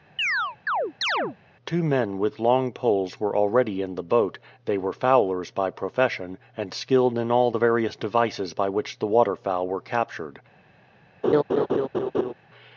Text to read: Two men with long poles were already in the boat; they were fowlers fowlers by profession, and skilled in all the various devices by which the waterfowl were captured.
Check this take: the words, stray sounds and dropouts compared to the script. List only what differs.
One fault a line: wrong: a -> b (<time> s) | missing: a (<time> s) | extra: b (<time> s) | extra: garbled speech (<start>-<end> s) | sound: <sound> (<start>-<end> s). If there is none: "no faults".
sound: chirp (0.2-1.4 s)
missing: fowlers (5.5 s)
sound: laugh (11.2-12.3 s)